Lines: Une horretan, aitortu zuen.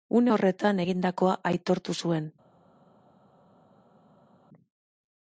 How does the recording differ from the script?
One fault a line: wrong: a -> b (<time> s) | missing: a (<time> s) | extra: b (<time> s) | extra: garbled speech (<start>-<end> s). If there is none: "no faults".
extra: egindakoa (0.8 s)